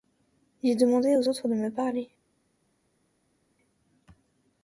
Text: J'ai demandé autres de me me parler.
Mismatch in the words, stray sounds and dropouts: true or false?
true